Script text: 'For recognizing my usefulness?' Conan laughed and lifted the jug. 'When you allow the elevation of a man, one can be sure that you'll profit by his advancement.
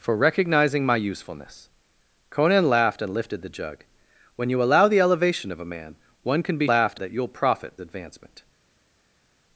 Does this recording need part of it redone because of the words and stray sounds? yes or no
yes